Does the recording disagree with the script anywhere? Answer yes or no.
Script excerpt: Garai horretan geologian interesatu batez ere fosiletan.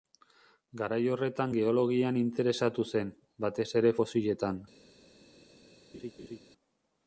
yes